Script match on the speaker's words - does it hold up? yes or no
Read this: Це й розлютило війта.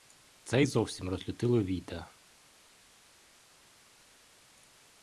no